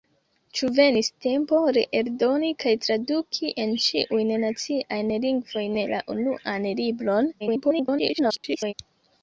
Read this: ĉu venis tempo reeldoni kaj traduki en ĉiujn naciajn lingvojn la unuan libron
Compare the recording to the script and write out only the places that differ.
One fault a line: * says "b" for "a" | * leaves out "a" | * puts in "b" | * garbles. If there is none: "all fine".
* garbles